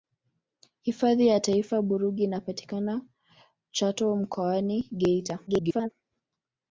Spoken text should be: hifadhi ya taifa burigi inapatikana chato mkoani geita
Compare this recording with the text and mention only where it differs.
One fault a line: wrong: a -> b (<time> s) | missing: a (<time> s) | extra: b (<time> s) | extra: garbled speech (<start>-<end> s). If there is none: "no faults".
extra: garbled speech (5.5-5.9 s)